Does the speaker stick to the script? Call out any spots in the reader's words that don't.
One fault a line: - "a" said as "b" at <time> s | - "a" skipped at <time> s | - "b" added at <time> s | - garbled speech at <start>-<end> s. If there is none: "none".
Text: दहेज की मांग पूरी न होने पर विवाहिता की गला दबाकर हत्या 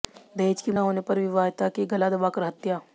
- "मांग पूरी" skipped at 0.7 s